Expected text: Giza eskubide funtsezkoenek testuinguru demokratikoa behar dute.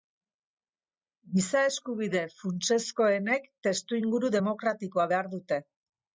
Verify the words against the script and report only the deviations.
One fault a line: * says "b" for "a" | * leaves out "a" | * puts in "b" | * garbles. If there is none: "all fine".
all fine